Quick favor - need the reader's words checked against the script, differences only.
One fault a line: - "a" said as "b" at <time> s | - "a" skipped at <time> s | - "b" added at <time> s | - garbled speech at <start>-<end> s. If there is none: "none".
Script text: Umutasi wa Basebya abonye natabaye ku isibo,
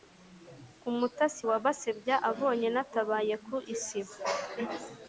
none